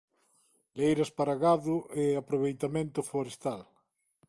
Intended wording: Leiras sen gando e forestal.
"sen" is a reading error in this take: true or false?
true